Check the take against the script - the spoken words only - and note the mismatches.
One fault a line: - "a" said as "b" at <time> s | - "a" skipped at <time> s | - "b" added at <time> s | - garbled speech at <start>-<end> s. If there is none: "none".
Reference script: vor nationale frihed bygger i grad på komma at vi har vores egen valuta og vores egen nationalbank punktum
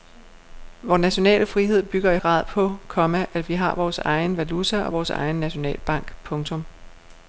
none